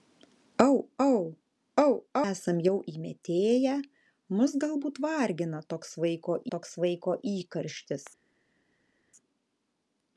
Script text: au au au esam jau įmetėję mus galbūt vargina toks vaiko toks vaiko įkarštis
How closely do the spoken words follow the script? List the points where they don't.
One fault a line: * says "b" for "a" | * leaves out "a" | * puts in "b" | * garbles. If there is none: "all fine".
all fine